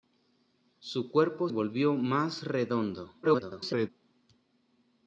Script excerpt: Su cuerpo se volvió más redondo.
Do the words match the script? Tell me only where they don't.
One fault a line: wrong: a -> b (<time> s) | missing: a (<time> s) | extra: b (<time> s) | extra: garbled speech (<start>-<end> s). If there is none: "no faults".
missing: se (1.5 s)
extra: garbled speech (3.2-3.9 s)